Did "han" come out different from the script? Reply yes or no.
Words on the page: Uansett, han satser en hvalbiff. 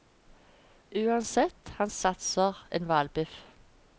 no